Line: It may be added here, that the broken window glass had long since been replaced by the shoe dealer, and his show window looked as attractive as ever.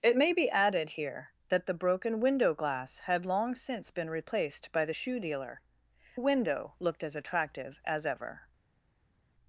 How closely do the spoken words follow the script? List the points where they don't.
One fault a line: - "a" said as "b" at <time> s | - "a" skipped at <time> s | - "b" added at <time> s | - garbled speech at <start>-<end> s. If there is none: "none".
- "and his show" skipped at 5.6 s